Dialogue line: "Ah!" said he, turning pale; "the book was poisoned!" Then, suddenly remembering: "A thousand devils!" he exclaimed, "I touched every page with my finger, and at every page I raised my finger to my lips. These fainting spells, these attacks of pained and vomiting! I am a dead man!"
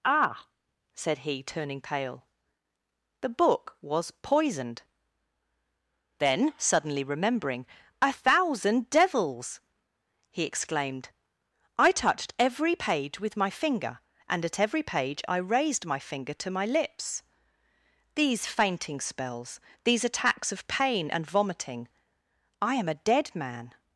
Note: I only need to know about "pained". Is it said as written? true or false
false